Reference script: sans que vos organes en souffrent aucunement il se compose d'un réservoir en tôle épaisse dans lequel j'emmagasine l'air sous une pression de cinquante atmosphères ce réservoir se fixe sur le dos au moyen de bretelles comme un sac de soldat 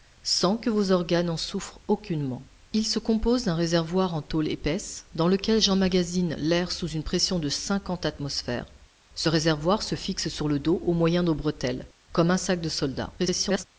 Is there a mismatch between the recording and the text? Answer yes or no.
yes